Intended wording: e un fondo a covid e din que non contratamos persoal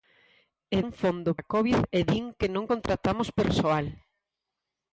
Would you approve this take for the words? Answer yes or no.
yes